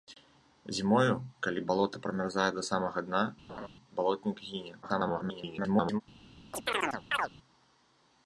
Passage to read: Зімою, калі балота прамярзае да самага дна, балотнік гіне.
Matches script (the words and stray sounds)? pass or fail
fail